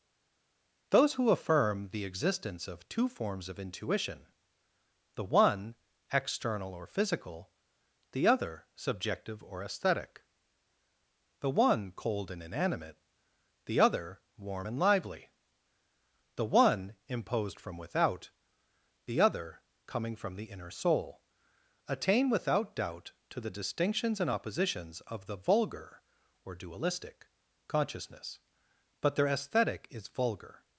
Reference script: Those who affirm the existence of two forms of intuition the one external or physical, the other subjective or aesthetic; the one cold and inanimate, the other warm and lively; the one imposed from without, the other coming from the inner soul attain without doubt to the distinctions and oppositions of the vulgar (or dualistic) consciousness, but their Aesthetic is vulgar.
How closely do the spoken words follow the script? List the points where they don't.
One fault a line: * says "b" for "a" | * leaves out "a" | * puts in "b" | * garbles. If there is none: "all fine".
all fine